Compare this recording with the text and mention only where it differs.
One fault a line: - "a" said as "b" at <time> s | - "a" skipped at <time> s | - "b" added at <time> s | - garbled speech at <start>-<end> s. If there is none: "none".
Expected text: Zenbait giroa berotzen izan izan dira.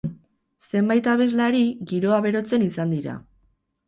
- "abeslari" added at 1.1 s
- "izan" skipped at 3.0 s